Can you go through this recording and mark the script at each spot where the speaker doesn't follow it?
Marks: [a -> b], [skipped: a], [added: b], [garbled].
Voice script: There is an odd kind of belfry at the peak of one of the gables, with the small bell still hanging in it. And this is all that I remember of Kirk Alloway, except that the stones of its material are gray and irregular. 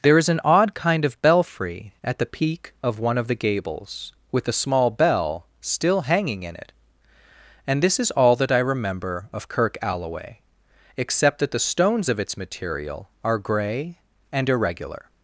There is an odd kind of belfry at the peak of one of the gables, with the small bell still hanging in it. And this is all that I remember of Kirk Alloway, except that the stones of its material are gray and irregular.